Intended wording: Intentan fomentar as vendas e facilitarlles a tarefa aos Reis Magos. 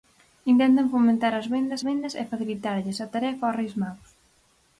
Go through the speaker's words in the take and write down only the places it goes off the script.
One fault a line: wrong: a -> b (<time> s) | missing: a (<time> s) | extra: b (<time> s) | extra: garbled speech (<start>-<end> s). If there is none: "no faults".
extra: vendas (1.9 s)